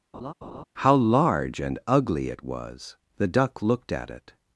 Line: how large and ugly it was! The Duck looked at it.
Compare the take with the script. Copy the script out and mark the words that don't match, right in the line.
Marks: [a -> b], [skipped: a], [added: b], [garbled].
how large and ugly it was! The Duck looked at it.